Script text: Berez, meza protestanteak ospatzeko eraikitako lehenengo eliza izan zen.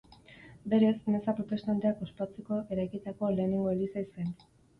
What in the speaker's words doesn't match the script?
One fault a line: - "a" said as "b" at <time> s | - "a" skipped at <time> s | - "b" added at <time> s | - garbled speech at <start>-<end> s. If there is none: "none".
- "izan" skipped at 4.1 s